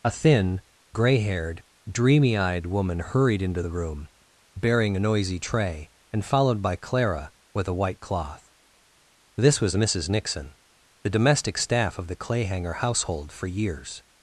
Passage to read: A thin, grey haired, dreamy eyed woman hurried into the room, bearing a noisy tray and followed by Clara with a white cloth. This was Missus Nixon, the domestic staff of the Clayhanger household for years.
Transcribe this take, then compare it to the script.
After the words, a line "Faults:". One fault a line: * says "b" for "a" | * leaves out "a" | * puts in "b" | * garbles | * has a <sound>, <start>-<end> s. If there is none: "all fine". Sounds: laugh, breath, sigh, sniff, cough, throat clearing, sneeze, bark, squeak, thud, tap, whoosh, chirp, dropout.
A thin, grey haired, dreamy eyed woman hurried into the room, bearing a noisy tray and followed by Clara with a white cloth. This was Missus Nixon, the domestic staff of the Clayhanger household for years.
Faults:
all fine